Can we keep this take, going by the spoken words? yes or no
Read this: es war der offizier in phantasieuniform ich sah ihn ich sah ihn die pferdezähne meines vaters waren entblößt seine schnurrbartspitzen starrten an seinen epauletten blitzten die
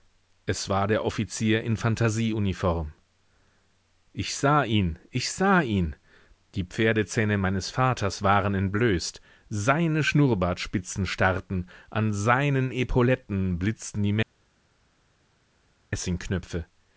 yes